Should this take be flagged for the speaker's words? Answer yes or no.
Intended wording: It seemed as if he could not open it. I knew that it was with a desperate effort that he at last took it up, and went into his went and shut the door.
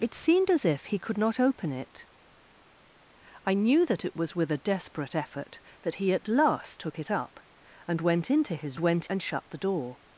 no